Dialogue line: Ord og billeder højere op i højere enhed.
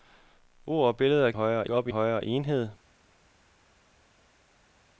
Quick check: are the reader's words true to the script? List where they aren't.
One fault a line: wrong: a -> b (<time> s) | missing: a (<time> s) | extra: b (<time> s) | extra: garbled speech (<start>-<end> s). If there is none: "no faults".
no faults